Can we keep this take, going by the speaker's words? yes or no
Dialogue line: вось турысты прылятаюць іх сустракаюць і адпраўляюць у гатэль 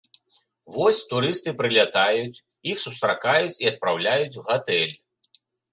yes